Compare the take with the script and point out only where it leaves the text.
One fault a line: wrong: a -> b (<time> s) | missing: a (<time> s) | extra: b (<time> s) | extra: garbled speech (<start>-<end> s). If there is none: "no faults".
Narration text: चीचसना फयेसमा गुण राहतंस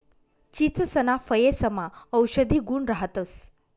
extra: औषधी (2.1 s)